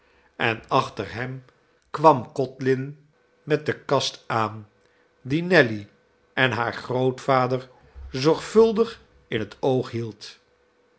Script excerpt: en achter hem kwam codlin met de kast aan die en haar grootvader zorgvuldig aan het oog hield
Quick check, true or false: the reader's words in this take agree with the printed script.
false